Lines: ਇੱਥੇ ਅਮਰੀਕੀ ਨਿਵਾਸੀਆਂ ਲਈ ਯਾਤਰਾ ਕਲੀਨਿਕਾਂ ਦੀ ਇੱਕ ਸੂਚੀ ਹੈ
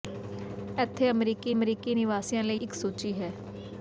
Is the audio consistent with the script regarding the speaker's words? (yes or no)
no